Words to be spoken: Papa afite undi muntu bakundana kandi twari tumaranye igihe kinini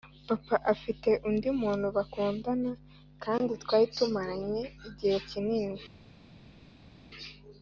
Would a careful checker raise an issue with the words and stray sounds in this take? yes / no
no